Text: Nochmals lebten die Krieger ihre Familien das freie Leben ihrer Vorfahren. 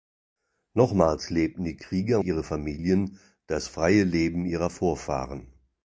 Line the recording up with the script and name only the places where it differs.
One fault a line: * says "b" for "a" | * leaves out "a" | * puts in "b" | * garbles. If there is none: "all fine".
all fine